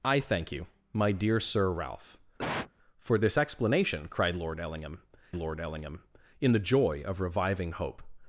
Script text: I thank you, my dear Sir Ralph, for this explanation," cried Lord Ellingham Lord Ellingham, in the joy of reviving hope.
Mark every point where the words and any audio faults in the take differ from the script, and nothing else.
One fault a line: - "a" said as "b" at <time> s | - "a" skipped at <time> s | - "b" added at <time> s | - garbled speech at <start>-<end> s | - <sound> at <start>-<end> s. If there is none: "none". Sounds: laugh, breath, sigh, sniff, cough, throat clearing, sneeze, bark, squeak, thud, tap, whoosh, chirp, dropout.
- cough at 2.4-2.7 s